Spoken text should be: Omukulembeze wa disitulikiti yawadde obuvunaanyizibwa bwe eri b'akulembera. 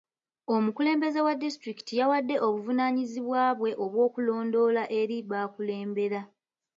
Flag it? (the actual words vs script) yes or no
yes